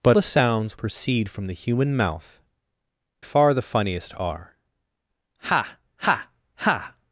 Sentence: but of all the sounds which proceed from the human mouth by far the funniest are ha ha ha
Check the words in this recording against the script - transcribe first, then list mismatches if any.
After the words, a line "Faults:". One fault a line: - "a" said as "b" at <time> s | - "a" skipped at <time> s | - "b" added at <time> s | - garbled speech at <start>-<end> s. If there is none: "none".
but the sounds proceed from the human mouth far the funniest are ha ha ha
Faults:
- "of all" skipped at 0.2 s
- "which" skipped at 0.8 s
- "by" skipped at 2.4 s